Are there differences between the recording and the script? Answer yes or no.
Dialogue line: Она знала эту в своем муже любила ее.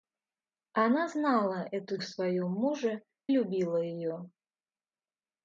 no